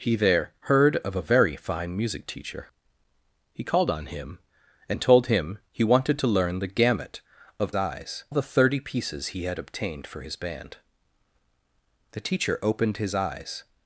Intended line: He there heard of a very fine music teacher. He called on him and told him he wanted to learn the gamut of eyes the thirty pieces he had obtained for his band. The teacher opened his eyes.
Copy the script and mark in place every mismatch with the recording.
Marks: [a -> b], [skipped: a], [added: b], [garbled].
He there heard of a very fine music teacher. He called on him and told him he wanted to learn the gamut of eyes the thirty pieces he had obtained for his band. The teacher opened his eyes.